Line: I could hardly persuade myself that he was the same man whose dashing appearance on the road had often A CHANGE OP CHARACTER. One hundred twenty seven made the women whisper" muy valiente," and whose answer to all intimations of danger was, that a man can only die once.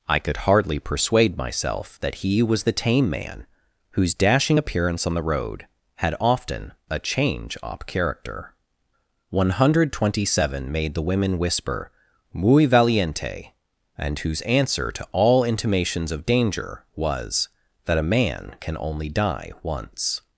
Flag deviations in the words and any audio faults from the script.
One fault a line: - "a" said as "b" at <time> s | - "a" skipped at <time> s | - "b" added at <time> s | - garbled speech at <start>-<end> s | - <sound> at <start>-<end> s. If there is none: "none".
- "same" said as "tame" at 2.7 s